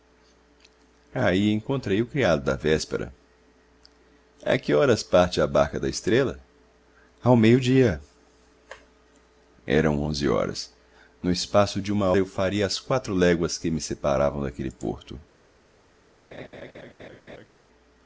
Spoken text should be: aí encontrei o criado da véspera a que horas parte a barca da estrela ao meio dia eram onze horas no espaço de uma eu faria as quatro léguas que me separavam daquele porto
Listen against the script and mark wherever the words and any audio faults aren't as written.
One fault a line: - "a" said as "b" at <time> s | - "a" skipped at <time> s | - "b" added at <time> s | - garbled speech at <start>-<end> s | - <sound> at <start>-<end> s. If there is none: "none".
- laugh at 16.3-17.5 s